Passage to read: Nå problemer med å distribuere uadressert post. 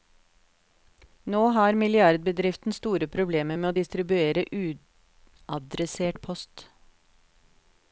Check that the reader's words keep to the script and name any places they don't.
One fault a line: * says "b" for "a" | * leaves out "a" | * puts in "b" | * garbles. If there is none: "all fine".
* puts in "har milliardbedriften store"